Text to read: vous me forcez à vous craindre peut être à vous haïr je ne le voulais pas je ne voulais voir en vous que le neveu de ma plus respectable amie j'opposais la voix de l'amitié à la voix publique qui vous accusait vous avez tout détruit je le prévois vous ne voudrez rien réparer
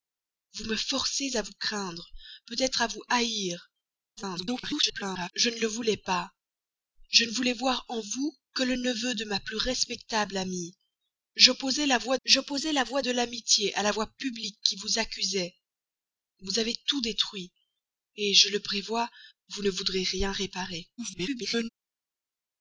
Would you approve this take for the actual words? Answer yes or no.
no